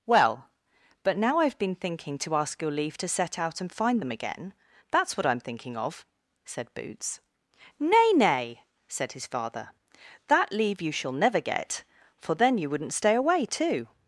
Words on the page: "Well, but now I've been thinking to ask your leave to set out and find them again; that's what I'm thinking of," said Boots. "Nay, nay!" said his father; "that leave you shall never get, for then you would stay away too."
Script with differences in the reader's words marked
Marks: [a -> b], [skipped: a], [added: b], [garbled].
"Well, but now I've been thinking to ask your leave to set out and find them again; that's what I'm thinking of," said Boots. "Nay, nay!" said his father; "that leave you shall never get, for then you [would -> wouldn't] stay away too."